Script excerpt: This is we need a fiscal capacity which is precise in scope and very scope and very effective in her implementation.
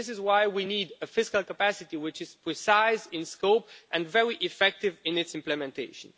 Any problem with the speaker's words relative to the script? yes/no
yes